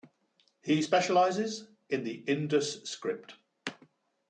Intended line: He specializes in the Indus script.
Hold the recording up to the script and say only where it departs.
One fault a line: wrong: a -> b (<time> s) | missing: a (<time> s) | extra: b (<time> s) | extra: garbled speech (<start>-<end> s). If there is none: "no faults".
no faults